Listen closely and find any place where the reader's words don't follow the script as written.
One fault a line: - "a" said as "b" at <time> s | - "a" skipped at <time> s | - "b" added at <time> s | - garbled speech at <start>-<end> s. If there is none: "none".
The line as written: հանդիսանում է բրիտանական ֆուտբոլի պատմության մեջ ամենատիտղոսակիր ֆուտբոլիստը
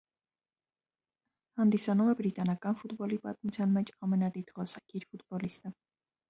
none